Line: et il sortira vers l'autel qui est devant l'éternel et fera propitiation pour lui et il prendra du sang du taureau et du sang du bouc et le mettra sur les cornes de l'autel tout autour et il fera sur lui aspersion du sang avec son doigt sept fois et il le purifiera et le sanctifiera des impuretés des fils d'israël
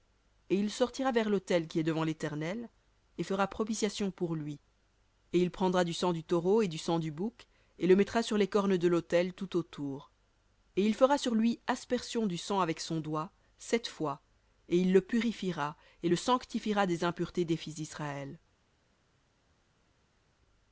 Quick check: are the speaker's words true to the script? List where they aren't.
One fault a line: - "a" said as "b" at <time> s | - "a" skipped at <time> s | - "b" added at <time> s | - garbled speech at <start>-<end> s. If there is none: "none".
none